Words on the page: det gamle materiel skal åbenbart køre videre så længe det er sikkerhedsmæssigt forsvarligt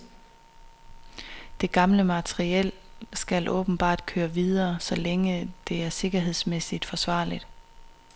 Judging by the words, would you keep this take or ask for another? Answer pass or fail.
pass